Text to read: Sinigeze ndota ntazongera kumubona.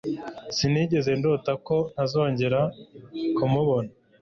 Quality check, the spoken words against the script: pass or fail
fail